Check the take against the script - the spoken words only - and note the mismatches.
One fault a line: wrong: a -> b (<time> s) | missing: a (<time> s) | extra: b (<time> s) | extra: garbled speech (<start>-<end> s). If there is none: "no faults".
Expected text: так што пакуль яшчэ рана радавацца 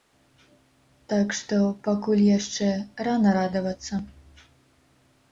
no faults